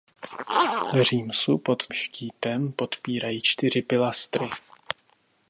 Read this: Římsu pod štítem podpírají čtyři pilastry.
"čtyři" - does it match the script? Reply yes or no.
yes